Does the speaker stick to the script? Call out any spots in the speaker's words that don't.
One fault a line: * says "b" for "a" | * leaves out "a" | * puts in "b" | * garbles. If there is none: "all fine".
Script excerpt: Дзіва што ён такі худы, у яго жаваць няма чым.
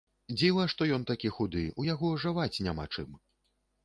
all fine